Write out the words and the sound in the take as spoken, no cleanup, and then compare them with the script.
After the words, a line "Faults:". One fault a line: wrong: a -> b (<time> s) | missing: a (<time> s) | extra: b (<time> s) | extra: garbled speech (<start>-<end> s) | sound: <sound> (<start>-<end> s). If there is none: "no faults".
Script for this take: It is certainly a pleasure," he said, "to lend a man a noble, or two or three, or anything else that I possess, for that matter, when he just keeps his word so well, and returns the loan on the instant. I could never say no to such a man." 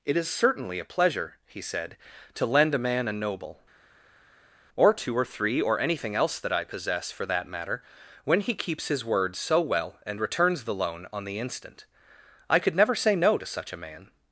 It is certainly a pleasure," he said, "to lend a man a noble, or two or three, or anything else that I possess, for that matter, when he keeps his word so well, and returns the loan on the instant. I could never say no to such a man."
Faults:
missing: just (8.5 s)